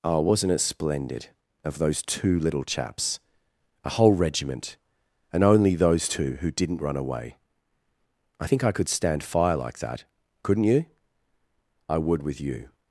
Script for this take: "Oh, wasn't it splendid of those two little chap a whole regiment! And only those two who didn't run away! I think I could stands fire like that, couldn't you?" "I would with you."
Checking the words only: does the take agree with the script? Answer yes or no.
no